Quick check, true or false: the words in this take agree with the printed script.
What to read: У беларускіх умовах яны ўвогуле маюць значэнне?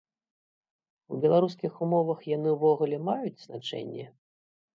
true